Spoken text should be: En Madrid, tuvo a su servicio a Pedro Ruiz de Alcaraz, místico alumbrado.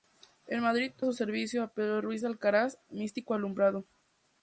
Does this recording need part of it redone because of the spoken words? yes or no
yes